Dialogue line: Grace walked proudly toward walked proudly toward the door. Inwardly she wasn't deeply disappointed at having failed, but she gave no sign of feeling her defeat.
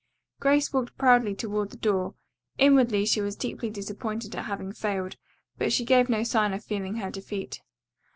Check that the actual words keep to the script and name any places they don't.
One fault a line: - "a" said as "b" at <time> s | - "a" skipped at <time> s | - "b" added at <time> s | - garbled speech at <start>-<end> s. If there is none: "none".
- "walked proudly toward" skipped at 1.7 s
- "wasn't" said as "was" at 3.2 s